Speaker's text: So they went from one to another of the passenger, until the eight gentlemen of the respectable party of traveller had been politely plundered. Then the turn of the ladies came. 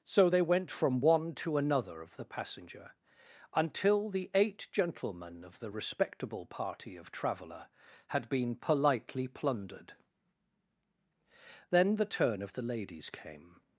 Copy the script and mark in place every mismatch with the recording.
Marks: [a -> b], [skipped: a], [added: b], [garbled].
So they went from one to another of the passenger, until the eight gentlemen of the respectable party of traveller had been politely plundered. Then the turn of the ladies came.